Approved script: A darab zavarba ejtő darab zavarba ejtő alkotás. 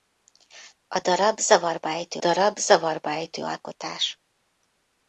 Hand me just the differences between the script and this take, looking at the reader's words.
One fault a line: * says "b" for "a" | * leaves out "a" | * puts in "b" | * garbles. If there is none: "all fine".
all fine